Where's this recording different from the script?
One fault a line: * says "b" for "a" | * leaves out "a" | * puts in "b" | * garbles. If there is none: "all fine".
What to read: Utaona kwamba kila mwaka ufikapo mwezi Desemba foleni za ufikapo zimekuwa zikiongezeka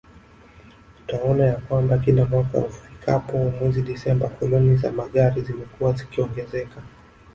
* puts in "ya"
* says "magari" for "ufikapo"